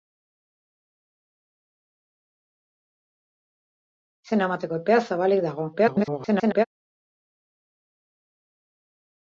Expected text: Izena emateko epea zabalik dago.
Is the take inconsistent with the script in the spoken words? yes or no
yes